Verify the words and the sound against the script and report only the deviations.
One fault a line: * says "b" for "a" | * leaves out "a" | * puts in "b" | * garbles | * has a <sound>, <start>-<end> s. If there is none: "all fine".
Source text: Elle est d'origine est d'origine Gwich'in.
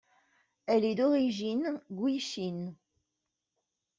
* leaves out "est d'origine"